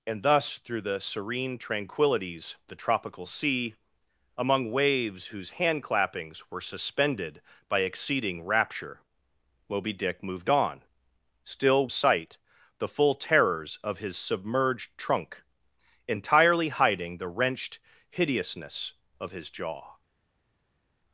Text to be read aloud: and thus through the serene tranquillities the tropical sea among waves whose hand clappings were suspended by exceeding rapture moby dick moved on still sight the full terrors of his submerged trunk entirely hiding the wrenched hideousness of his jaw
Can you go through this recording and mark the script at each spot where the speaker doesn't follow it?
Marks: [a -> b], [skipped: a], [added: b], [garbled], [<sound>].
and thus through the serene tranquillities the tropical sea among waves whose hand clappings were suspended by exceeding rapture moby dick moved on still sight the full terrors of his submerged trunk entirely hiding the wrenched hideousness of his jaw